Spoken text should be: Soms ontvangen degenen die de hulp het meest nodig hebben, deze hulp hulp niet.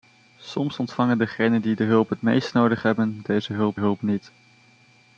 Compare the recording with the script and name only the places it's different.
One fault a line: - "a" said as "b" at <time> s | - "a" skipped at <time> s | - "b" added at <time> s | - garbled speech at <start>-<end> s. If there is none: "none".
none